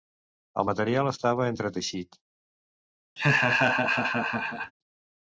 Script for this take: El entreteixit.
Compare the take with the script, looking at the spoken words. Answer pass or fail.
fail